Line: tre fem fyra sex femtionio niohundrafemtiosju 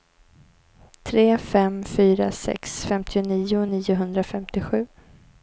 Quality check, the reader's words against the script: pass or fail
pass